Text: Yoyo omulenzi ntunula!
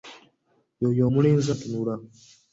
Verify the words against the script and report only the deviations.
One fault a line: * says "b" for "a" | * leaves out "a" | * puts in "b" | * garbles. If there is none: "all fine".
all fine